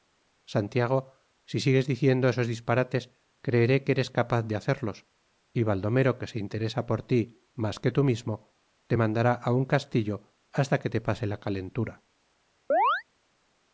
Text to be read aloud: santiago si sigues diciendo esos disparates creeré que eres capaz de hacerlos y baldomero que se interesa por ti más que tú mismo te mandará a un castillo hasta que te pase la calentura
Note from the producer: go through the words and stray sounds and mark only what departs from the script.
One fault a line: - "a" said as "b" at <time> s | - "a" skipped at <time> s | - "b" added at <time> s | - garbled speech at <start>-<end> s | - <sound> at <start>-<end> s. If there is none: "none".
- chirp at 12.7-13.0 s